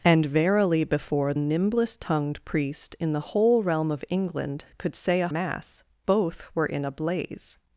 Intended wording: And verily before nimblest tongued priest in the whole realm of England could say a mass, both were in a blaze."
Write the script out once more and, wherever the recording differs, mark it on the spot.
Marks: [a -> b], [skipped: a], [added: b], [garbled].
And verily before nimblest tongued priest in the whole realm of England could say a mass, both were in a blaze."